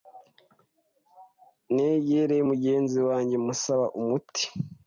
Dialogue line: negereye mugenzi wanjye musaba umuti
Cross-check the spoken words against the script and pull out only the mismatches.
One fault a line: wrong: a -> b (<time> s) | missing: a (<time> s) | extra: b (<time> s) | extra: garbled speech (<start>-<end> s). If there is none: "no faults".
no faults